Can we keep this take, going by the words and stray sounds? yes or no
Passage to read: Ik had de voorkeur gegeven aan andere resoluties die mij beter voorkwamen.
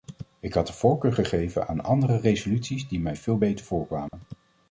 no